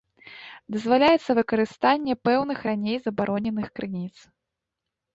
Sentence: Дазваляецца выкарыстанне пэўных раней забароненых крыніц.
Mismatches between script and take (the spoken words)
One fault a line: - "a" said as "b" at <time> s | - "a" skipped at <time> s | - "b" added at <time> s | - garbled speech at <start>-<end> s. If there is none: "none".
none